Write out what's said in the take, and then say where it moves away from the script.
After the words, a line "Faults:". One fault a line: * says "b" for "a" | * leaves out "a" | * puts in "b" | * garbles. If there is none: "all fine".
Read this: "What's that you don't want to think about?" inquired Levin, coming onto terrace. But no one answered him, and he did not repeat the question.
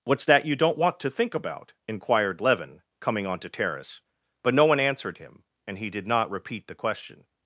"What's that you don't want to think about?" inquired Levin, coming onto terrace. But no one answered him, and he did not repeat the question.
Faults:
all fine